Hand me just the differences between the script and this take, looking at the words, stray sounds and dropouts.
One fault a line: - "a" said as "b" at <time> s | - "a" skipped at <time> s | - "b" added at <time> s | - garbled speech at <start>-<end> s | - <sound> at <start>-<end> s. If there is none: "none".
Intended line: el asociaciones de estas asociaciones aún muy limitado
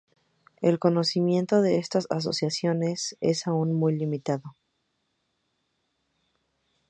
- "asociaciones" said as "conocimiento" at 0.8 s
- "es" added at 3.2 s